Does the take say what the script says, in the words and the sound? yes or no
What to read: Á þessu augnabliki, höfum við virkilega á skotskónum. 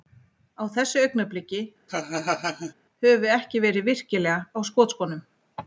no